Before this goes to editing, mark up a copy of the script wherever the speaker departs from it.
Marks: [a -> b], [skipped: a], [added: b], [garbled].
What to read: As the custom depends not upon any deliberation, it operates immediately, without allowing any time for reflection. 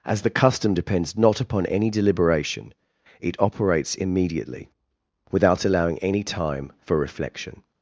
As the custom depends not upon any deliberation, it operates immediately, without allowing any time for reflection.